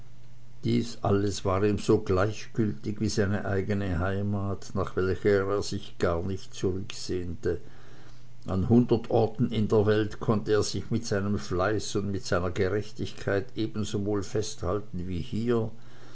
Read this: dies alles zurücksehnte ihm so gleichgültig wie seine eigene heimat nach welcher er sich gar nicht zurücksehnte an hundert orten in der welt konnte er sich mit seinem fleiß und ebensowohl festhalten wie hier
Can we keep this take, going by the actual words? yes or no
no